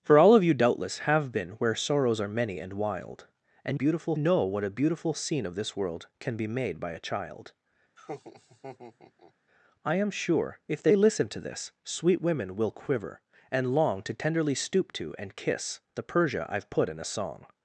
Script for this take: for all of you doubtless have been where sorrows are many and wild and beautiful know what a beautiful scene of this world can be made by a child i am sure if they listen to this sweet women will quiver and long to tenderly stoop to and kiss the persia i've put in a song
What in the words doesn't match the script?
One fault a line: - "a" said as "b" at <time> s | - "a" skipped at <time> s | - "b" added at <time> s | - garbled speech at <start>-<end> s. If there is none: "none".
none